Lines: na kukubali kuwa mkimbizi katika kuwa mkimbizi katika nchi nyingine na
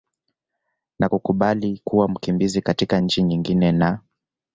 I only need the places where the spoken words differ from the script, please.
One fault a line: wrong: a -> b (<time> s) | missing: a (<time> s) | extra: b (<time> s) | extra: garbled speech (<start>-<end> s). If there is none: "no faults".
missing: kuwa mkimbizi katika (3.0 s)